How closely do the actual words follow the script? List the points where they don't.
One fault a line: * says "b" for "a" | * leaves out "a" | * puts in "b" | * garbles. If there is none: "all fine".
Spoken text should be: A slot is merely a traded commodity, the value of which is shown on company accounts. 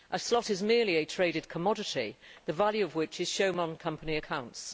all fine